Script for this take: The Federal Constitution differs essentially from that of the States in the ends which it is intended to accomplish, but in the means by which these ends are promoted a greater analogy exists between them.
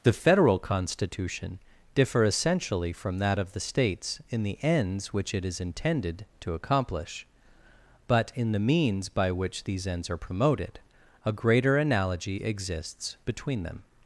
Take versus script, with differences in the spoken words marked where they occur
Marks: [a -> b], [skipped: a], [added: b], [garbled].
The Federal Constitution [differs -> differ] essentially from that of the States in the ends which it is intended to accomplish, but in the means by which these ends are promoted a greater analogy exists between them.